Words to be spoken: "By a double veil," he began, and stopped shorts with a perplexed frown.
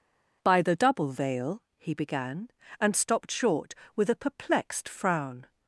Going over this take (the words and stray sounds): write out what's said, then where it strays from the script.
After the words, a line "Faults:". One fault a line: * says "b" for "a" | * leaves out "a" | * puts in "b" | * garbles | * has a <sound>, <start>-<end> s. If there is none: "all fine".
"By the double veil," he began, and stopped short with a perplexed frown.
Faults:
* says "the" for "a"
* says "short" for "shorts"